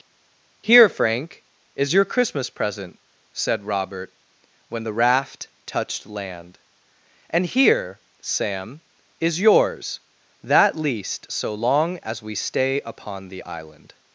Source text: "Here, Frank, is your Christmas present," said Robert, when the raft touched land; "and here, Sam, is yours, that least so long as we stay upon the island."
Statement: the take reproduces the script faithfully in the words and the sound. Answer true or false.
true